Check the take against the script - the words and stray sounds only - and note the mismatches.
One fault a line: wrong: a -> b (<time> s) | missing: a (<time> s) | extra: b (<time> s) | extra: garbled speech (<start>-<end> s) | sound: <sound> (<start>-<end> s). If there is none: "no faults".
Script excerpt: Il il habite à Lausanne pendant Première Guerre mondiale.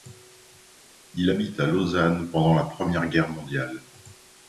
missing: il (1.3 s)
extra: la (2.5 s)